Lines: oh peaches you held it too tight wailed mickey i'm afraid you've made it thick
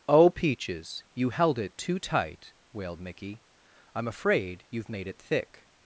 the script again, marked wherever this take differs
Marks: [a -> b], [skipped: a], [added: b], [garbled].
oh peaches you held it too tight wailed mickey i'm afraid you've made it thick